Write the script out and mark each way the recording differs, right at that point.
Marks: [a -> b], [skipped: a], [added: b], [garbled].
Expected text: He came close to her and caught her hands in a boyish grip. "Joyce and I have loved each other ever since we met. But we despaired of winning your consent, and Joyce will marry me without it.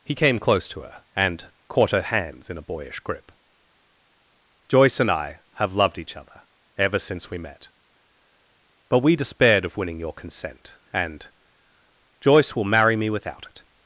He came close to her and caught her hands in a boyish grip. "Joyce and I have loved each other ever since we met. But we despaired of winning your consent, and Joyce will marry me without it.